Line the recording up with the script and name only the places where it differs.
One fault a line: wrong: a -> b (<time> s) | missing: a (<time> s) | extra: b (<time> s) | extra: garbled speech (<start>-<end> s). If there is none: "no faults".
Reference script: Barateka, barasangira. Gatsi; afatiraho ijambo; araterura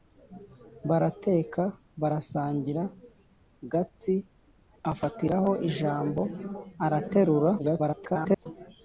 extra: garbled speech (7.6-8.5 s)